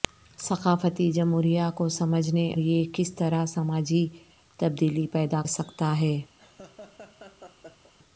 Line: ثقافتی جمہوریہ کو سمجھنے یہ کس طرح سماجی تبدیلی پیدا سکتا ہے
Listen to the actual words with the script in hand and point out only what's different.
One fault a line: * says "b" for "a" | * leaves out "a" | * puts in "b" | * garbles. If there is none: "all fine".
all fine